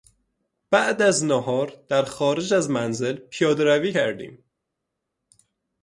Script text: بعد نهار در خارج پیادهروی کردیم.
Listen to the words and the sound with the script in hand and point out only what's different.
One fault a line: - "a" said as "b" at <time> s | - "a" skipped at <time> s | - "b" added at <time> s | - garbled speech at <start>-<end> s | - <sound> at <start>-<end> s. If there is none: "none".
- "از" added at 1.0 s
- "از منزل" added at 2.5 s